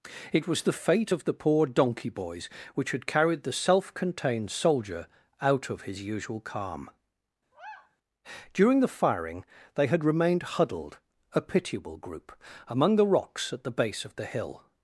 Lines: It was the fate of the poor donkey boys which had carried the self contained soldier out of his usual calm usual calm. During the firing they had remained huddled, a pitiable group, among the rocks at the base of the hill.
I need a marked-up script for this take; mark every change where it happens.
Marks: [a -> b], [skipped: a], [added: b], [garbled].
It was the fate of the poor donkey boys which had carried the self contained soldier out of his usual calm [skipped: usual calm.] During the firing they had remained huddled, a pitiable group, among the rocks at the base of the hill.